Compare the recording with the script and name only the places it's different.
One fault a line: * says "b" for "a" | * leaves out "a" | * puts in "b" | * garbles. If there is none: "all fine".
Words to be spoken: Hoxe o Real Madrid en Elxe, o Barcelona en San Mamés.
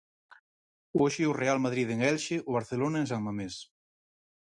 all fine